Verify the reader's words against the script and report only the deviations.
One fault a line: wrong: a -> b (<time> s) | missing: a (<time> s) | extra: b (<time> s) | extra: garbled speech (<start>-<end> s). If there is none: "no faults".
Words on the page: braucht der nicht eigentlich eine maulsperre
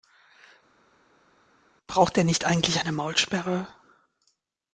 no faults